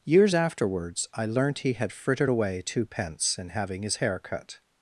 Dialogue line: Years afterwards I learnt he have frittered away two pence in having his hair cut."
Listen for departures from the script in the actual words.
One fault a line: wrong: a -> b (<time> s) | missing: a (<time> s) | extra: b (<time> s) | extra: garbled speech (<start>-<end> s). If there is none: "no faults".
wrong: have -> had (1.7 s)